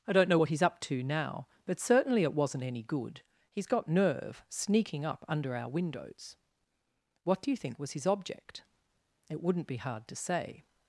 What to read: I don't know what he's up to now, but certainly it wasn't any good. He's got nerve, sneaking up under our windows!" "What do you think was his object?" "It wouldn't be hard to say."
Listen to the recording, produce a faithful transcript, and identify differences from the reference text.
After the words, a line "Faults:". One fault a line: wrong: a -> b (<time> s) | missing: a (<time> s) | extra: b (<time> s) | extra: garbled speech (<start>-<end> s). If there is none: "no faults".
I don't know what he's up to now, but certainly it wasn't any good. He's got nerve, sneaking up under our windows!" "What do you think was his object?" "It wouldn't be hard to say."
Faults:
no faults